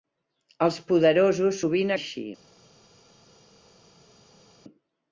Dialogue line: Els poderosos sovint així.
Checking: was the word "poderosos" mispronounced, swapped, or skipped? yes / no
no